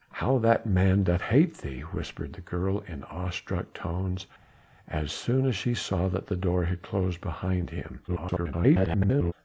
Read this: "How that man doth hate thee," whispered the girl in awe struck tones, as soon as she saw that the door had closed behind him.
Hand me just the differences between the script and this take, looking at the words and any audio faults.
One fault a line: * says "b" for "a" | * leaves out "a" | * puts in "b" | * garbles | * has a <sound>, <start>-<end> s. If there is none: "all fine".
* garbles